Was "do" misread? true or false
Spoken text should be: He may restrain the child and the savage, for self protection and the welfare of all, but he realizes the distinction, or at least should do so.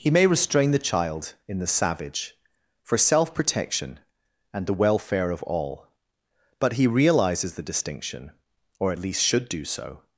false